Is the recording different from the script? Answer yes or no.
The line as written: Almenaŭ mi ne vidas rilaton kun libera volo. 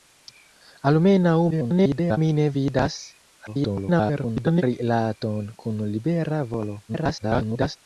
yes